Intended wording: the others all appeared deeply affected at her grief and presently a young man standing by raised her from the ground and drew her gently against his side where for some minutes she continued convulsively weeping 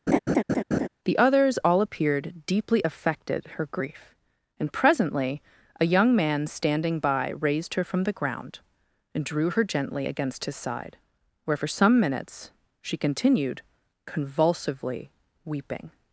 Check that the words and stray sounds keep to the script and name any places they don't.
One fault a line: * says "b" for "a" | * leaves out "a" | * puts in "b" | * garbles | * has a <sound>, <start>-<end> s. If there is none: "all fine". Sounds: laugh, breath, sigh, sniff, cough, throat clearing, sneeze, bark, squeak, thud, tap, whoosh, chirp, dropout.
* has a laugh, 0.1-0.9 s
* leaves out "at"